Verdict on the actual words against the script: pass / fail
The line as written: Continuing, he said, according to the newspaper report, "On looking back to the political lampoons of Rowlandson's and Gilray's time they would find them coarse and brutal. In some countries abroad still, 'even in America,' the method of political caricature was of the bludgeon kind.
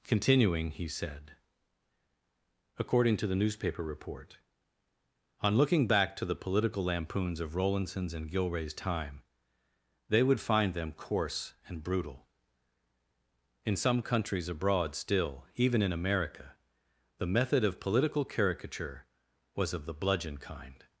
pass